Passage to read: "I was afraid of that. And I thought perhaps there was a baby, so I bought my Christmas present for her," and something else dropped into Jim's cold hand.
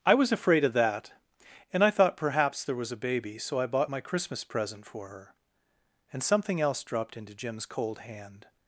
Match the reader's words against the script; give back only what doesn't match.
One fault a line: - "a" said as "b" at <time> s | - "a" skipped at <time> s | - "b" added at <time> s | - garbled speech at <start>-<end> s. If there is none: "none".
none